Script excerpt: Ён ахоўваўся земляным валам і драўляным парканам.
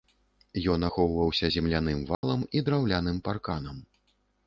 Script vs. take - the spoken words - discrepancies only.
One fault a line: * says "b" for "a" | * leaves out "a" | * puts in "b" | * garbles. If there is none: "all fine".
all fine